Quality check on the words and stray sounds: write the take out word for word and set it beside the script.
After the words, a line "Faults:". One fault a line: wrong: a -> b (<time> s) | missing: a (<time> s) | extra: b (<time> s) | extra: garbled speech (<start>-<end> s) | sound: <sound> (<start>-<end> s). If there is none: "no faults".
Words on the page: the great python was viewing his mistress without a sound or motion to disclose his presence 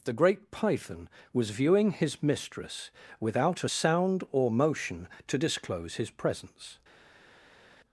the great python was viewing his mistress without a sound or motion to disclose his presence
Faults:
no faults